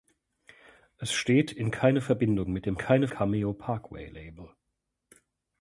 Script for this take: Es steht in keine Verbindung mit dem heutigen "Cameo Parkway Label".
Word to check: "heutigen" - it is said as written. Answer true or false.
false